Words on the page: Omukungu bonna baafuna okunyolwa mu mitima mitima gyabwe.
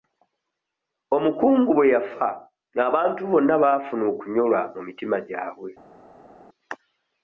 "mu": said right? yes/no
yes